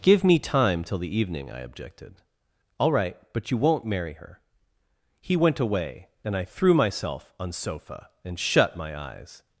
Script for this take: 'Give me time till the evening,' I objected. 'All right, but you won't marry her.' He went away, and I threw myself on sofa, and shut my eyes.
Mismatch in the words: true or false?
false